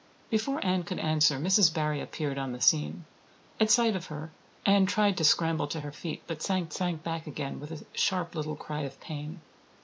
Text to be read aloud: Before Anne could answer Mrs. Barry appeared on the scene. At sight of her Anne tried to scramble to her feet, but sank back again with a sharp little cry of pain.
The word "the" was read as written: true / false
true